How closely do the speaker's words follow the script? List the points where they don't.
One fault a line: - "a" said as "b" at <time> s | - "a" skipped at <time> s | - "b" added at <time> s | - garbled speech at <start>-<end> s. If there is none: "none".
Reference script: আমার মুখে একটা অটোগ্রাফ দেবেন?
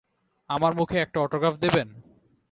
none